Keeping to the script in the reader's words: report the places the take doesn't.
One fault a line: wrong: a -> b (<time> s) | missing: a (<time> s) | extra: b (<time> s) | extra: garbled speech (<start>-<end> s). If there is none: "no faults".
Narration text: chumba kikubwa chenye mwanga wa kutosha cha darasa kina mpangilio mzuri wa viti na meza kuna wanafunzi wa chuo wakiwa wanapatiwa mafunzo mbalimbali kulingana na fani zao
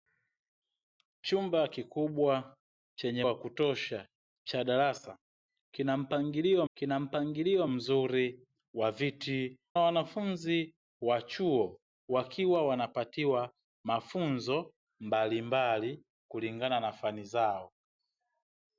missing: mwanga (3.2 s)
extra: kina mpangilio (6.7 s)
missing: na meza kuna (9.6 s)